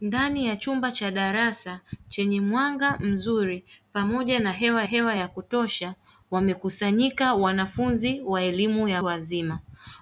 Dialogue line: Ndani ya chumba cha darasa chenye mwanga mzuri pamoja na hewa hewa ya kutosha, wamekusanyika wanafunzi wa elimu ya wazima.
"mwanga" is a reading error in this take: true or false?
false